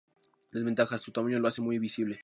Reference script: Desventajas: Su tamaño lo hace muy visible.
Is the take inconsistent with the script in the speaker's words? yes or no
no